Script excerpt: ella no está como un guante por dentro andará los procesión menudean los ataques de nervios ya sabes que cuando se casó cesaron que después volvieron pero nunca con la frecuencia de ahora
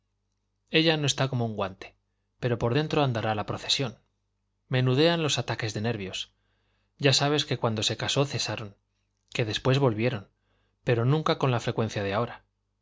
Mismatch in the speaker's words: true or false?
true